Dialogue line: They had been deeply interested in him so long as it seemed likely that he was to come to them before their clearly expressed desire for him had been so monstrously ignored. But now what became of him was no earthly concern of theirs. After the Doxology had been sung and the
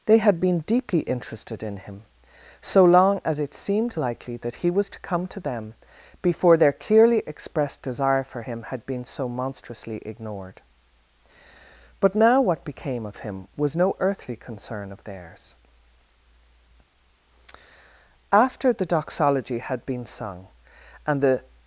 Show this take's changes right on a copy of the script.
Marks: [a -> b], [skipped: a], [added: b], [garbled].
They had been deeply interested in him so long as it seemed likely that he was to come to them before their clearly expressed desire for him had been so monstrously ignored. But now what became of him was no earthly concern of theirs. After the Doxology had been sung and the